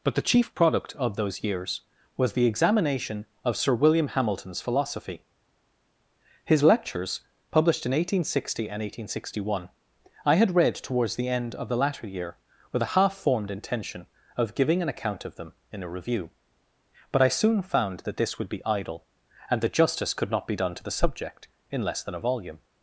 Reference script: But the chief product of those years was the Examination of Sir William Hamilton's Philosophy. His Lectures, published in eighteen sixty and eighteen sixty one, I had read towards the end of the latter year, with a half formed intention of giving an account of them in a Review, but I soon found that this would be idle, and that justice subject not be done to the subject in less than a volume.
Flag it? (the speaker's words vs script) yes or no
yes